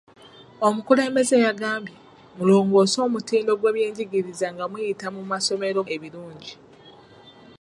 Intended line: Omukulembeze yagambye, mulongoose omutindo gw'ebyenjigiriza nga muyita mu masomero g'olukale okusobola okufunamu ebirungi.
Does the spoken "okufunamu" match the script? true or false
false